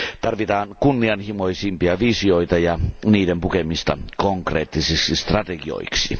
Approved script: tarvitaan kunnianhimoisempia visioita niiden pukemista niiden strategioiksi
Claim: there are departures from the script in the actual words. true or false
true